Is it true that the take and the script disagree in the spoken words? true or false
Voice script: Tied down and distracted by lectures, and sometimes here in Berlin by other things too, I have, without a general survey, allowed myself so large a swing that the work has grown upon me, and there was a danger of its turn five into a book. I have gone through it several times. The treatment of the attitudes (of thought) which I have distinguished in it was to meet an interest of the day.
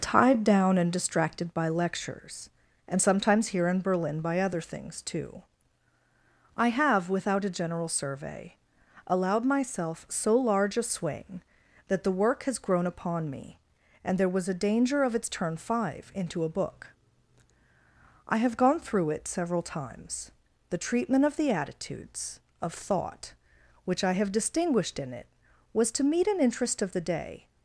false